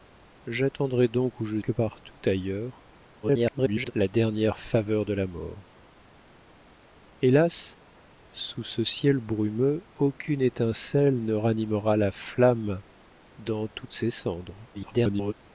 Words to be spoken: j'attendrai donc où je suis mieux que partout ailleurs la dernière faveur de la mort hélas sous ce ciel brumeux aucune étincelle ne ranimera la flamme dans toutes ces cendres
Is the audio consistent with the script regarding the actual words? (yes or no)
no